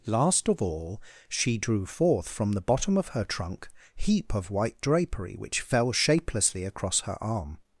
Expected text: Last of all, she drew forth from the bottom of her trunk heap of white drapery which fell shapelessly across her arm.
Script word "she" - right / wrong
right